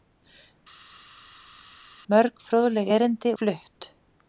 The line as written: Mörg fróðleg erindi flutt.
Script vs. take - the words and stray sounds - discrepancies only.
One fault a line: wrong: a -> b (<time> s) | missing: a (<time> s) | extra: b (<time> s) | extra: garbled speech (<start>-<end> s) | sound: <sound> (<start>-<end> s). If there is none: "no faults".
no faults